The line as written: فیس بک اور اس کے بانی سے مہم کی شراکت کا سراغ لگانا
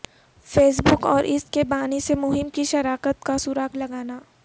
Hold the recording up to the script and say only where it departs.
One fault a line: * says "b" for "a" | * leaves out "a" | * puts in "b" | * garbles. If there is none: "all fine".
all fine